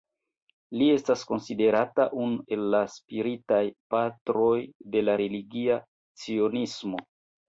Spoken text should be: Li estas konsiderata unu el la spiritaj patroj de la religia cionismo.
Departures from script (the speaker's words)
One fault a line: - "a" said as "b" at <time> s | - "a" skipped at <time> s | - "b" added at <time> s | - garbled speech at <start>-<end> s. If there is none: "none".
none